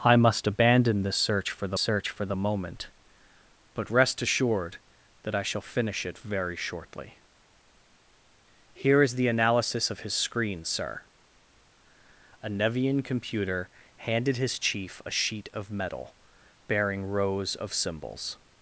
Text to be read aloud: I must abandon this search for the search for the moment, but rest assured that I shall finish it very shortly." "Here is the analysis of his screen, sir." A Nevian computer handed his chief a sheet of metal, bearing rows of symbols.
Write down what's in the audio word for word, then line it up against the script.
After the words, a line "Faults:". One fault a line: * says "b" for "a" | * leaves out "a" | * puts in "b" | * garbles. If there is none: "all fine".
I must abandon this search for the search for the moment, but rest assured that I shall finish it very shortly." "Here is the analysis of his screen, sir." A Nevian computer handed his chief a sheet of metal, bearing rows of symbols.
Faults:
all fine